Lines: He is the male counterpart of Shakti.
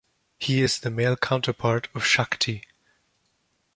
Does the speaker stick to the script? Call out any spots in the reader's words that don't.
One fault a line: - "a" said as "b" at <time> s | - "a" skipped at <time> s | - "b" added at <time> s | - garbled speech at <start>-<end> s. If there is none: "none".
none